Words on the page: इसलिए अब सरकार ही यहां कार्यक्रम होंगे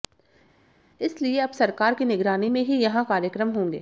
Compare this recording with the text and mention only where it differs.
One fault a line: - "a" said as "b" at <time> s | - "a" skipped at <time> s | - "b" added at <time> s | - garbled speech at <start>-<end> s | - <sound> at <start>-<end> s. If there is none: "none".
- "की निगरानी में" added at 1.9 s